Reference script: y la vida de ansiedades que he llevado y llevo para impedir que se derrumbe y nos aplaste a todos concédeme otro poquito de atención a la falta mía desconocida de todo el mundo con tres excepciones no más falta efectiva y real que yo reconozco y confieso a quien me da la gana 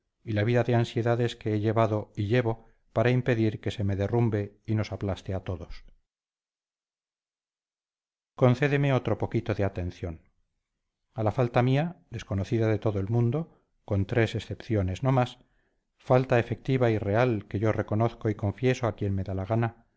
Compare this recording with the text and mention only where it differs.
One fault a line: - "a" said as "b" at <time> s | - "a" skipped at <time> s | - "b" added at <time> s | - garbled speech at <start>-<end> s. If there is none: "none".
- "me" added at 3.8 s